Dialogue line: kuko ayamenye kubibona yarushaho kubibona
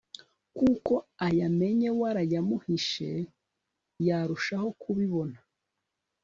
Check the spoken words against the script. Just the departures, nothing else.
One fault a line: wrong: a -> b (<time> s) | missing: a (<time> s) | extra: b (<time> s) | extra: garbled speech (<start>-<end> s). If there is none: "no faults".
wrong: kubibona -> warayamuhishe (2.0 s)